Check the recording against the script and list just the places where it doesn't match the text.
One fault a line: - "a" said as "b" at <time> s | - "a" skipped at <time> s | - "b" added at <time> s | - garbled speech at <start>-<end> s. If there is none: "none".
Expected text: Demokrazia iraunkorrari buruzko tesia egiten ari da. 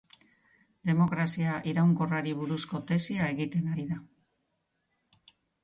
none